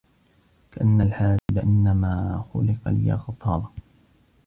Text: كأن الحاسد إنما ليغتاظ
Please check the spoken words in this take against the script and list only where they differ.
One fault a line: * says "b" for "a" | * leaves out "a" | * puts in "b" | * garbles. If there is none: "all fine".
* puts in "خلق"